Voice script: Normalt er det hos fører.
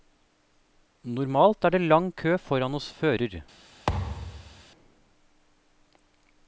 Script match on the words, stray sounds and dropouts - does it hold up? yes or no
no